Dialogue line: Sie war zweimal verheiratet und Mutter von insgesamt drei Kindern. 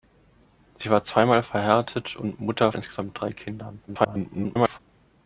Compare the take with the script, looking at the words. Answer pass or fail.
fail